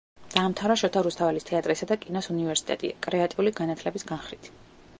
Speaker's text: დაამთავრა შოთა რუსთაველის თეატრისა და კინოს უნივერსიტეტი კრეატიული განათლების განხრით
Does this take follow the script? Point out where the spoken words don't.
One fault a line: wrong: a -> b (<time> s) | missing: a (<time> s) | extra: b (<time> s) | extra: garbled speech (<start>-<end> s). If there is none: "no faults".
no faults